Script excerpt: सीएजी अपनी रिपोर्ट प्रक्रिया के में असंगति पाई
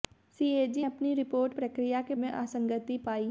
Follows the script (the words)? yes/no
yes